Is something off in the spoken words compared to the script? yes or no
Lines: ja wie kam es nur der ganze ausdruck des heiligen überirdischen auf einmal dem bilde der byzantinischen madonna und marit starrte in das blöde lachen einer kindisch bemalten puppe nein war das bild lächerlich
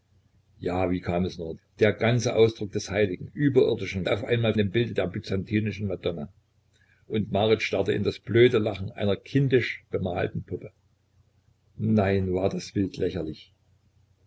no